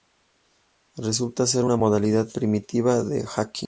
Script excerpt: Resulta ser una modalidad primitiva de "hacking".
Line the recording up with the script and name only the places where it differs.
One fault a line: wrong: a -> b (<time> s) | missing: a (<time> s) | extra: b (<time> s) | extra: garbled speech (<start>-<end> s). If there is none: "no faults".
no faults